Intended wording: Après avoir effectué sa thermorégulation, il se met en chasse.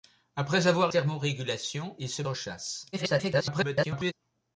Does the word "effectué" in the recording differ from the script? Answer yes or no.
yes